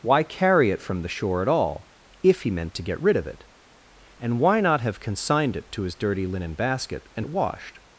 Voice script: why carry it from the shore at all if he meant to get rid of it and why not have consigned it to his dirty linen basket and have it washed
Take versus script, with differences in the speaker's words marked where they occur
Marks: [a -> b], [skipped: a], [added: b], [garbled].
why carry it from the shore at all if he meant to get rid of it and why not have consigned it to his dirty linen basket and [skipped: have] it washed